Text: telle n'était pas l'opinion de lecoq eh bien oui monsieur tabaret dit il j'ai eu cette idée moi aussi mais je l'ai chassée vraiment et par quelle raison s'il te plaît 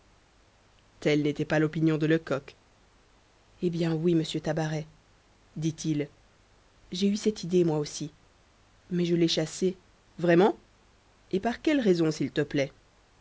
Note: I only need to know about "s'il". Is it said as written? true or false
true